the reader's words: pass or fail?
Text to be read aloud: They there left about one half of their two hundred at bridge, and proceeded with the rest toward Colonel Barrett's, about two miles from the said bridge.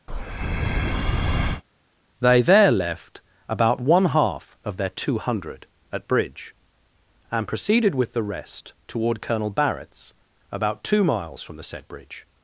pass